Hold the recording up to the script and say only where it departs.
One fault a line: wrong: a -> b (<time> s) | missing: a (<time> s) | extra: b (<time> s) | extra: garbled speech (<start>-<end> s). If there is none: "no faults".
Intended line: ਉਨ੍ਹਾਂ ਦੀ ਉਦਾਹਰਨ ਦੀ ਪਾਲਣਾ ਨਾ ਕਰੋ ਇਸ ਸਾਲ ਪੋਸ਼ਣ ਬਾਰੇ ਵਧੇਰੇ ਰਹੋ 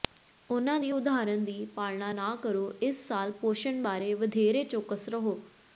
extra: ਚੌਕਸ (4.6 s)